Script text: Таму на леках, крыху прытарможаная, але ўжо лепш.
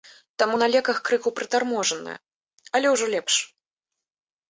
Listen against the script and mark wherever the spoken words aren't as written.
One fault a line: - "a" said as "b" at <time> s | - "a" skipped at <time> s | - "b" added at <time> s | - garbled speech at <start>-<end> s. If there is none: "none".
none